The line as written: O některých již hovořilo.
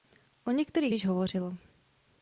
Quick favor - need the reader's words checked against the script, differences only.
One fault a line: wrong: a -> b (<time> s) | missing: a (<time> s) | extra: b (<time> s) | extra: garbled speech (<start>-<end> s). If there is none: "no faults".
no faults